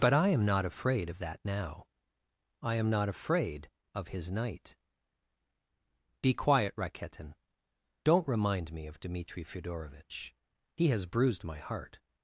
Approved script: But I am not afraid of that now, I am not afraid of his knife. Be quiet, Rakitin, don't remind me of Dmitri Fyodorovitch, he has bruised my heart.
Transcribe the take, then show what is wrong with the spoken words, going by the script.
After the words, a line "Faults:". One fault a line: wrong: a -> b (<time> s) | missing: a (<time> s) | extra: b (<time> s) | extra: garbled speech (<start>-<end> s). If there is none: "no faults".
But I am not afraid of that now, I am not afraid of his night. Be quiet, Rakitin, don't remind me of Dmitri Fyodorovitch, he has bruised my heart.
Faults:
wrong: knife -> night (4.3 s)